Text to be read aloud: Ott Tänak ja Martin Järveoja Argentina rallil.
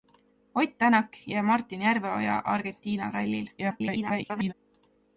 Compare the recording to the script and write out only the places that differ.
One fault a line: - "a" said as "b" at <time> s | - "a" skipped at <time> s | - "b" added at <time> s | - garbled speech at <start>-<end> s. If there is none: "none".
- garbled speech at 3.6-4.5 s